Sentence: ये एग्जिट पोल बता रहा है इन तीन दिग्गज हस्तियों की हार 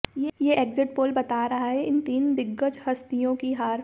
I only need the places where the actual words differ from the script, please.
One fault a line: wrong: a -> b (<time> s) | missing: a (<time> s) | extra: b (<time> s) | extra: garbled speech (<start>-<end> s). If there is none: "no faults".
no faults